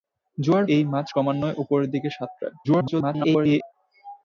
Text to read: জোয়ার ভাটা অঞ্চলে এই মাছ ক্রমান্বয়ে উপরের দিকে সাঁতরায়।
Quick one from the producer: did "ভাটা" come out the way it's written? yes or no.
no